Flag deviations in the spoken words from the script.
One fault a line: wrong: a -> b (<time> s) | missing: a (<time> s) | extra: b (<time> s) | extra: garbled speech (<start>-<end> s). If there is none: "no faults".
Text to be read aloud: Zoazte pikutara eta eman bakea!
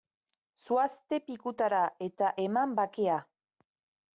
no faults